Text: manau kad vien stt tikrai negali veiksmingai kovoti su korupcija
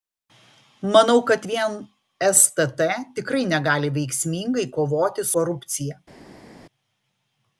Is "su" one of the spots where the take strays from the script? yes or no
yes